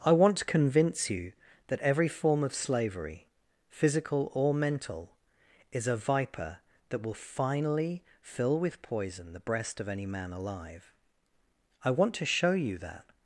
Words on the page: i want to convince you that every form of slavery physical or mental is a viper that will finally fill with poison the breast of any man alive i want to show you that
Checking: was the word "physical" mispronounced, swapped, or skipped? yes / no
no